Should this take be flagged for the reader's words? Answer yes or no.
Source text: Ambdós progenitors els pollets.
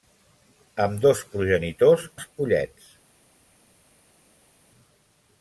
no